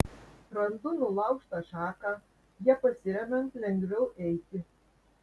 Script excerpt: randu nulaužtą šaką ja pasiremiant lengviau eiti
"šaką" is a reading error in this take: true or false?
false